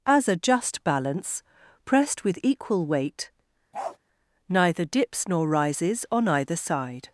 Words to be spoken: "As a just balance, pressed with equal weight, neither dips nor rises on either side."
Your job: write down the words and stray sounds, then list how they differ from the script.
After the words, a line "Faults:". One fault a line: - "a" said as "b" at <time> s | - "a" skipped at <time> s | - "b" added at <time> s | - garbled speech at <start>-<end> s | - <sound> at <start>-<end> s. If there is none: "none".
"As a just balance, pressed with equal weight, neither dips nor rises on either side."
Faults:
- bark at 3.7-4.0 s